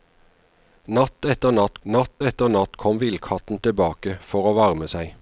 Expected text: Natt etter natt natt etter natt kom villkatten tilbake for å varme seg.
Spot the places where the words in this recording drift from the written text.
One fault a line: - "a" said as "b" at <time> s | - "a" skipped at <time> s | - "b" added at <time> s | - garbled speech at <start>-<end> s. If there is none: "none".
none